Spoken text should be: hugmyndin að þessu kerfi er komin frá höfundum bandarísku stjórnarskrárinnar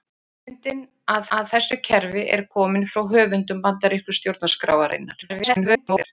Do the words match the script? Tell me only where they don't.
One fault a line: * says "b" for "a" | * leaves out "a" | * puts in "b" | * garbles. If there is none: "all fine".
* puts in "að"
* garbles